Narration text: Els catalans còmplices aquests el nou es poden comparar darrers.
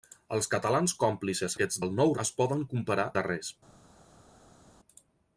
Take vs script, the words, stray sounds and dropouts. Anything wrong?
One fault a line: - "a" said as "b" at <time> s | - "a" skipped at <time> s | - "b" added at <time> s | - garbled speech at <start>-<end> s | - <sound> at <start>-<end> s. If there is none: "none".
none